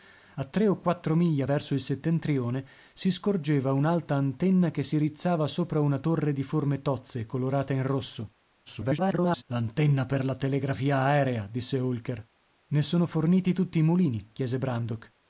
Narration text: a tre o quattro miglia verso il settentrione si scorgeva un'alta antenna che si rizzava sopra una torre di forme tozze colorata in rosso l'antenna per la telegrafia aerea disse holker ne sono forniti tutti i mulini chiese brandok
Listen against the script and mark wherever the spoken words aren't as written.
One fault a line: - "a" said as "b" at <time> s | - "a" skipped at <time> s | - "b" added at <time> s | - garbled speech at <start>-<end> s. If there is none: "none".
- garbled speech at 8.7-9.4 s